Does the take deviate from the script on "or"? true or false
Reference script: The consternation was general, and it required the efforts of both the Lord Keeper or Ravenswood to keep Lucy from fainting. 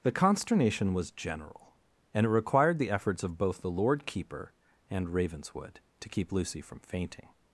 true